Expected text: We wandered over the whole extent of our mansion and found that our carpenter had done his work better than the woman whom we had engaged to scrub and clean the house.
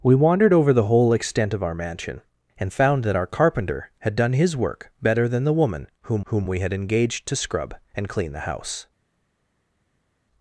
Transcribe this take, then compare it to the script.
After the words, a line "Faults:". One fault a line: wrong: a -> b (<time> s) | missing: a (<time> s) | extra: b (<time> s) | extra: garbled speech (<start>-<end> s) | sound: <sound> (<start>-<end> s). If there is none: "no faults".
We wandered over the whole extent of our mansion and found that our carpenter had done his work better than the woman whom whom we had engaged to scrub and clean the house.
Faults:
extra: whom (6.3 s)